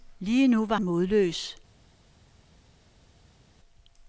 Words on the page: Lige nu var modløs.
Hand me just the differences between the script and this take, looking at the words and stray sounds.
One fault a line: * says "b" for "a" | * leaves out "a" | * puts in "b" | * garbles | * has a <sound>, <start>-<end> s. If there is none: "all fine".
all fine